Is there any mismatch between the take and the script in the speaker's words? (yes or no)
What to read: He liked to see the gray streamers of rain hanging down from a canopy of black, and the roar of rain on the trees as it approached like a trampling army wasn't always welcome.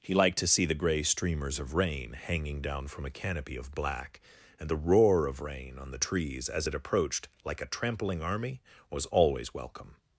yes